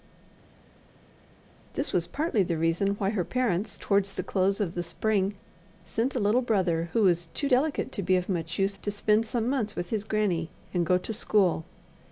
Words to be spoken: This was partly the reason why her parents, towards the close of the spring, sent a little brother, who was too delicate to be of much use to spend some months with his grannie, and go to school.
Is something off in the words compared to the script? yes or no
no